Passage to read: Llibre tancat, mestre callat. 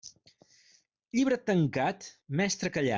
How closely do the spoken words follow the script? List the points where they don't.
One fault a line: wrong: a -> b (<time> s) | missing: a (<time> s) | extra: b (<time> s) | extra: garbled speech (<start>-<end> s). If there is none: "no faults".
no faults